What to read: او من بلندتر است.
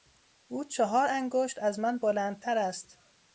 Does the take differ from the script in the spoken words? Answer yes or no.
yes